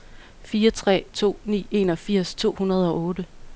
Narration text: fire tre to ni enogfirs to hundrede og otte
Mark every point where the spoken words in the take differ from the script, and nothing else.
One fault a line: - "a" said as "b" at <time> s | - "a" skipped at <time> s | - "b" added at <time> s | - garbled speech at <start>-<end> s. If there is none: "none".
none